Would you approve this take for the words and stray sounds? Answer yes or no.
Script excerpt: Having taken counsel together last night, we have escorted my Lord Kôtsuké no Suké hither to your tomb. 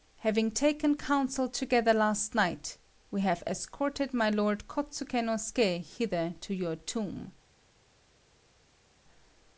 yes